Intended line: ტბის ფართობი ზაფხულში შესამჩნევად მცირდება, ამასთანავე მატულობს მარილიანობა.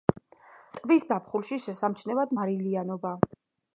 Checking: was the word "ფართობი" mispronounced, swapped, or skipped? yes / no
yes